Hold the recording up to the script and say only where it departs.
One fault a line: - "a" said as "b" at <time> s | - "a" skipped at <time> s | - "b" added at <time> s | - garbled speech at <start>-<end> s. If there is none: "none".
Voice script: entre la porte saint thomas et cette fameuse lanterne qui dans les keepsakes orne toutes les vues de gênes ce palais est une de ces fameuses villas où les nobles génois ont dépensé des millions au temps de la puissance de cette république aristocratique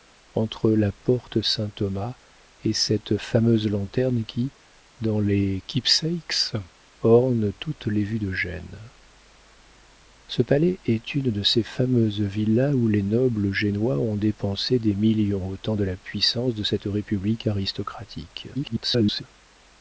- garbled speech at 18.5-19.2 s